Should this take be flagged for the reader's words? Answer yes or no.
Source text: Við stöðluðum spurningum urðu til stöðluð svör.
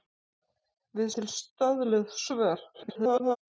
yes